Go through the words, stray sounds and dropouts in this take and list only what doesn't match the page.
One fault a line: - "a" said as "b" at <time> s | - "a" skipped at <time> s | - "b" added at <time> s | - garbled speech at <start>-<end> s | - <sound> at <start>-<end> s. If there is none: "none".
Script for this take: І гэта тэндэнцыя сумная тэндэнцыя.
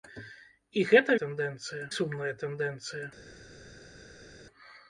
none